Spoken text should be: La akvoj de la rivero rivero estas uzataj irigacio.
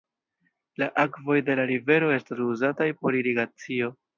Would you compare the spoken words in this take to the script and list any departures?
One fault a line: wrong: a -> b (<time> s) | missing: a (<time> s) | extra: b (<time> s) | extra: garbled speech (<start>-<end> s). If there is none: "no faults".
missing: rivero (2.1 s)
extra: por (3.0 s)